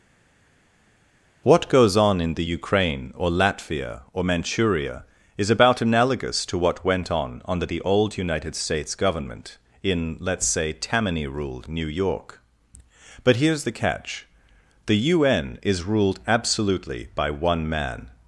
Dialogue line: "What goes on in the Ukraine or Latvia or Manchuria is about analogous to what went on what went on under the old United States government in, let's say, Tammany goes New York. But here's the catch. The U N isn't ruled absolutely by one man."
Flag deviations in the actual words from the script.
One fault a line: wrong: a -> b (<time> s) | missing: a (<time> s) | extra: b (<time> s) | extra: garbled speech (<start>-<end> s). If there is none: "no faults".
missing: what went on (7.4 s)
wrong: goes -> ruled (11.3 s)
wrong: isn't -> is (15.6 s)